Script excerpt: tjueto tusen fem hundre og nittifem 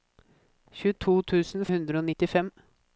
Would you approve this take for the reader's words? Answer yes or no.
no